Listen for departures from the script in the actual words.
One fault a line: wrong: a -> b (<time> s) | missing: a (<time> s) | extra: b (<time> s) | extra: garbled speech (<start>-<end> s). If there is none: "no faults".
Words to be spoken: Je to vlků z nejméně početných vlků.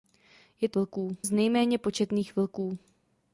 no faults